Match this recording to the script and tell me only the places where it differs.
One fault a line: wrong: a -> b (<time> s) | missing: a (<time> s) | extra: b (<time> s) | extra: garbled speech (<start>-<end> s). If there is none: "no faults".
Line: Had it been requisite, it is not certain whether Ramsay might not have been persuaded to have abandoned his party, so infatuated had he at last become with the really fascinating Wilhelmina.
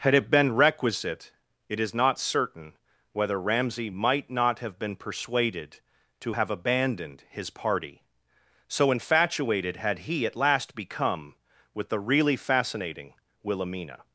no faults